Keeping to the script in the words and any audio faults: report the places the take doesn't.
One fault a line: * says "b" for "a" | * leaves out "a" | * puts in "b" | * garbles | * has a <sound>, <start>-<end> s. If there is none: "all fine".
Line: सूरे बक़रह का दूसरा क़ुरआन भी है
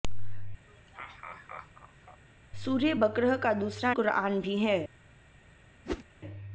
* has a laugh, 0.7-2.2 s
* has a whoosh, 5.8-6.0 s